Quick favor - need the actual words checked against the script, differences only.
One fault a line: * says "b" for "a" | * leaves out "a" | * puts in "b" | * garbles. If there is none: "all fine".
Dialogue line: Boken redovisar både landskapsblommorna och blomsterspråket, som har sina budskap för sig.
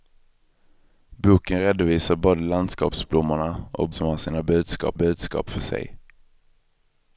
* leaves out "blomsterspråket"
* puts in "budskap"